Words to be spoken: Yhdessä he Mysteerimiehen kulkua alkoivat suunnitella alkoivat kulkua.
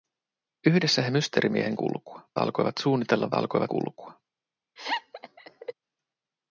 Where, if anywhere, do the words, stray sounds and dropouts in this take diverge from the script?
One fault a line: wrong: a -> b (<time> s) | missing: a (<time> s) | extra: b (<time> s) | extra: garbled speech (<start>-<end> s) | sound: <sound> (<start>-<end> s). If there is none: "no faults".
sound: laugh (4.8-5.7 s)